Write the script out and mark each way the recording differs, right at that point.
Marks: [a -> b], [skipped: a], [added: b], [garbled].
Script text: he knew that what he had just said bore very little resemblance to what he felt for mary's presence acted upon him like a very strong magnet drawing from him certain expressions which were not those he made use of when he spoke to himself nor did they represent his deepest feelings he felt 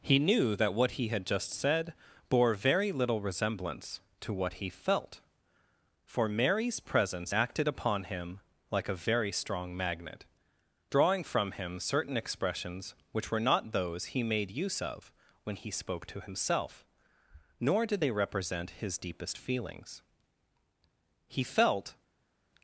he knew that what he had just said bore very little resemblance to what he felt for mary's presence acted upon him like a very strong magnet drawing from him certain expressions which were not those he made use of when he spoke to himself nor did they represent his deepest feelings he felt